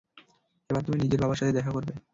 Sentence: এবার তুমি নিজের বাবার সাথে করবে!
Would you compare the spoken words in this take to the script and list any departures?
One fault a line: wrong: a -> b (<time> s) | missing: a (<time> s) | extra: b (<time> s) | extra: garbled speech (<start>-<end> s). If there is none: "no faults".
extra: দেখা (1.6 s)